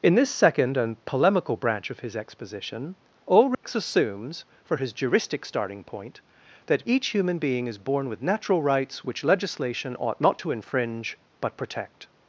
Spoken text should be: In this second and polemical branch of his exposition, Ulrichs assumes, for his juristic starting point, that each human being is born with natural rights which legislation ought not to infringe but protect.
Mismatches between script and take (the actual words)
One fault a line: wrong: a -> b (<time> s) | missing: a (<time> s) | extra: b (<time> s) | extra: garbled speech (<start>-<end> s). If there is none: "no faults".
no faults